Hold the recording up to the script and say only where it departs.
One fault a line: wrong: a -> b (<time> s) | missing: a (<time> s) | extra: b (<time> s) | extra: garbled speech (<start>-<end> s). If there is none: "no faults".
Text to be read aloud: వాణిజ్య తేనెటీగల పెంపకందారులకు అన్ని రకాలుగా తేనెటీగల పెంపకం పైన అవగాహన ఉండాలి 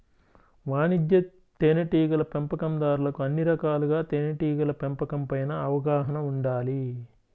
no faults